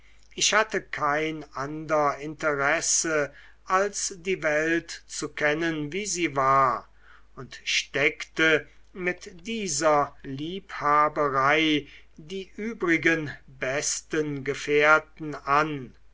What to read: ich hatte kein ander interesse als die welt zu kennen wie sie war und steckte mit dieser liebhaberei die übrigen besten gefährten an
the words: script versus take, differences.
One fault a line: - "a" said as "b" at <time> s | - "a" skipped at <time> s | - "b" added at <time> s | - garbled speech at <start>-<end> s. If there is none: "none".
none